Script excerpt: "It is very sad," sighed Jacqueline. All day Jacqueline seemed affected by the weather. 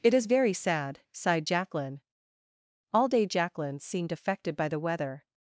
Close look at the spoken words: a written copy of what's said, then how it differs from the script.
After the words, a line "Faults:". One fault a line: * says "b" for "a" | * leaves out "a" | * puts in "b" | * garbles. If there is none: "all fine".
"It is very sad," sighed Jacqueline. All day Jacqueline seemed affected by the weather.
Faults:
all fine